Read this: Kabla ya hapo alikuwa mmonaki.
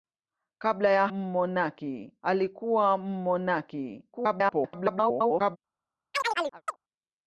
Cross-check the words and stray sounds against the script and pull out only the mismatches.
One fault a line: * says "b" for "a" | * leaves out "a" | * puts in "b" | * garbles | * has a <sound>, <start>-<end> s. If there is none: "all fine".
* says "mmonaki" for "hapo"
* garbles
* has a chirp, 6.1-6.8 s